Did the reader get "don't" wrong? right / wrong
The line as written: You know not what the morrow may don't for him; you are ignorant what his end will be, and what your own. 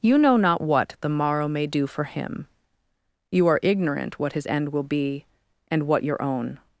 wrong